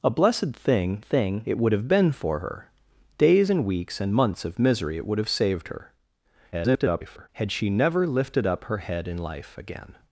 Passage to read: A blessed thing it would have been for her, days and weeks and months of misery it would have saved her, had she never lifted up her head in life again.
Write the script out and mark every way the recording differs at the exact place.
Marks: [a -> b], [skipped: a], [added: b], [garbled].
A blessed thing [added: thing] it would have been for her, days and weeks and months of misery it would have saved her, [garbled] had she never lifted up her head in life again.